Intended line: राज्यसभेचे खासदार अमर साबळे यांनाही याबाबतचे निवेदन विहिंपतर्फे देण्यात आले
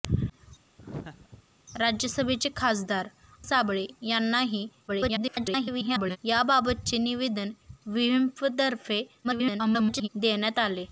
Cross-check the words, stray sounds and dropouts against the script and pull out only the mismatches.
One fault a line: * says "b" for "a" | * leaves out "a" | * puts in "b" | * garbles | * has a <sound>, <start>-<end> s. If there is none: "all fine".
* has a laugh, 0.8-1.4 s
* leaves out "अमर"
* garbles
* garbles